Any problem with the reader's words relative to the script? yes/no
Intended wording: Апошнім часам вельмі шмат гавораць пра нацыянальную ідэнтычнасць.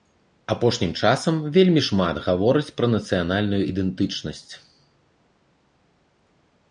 no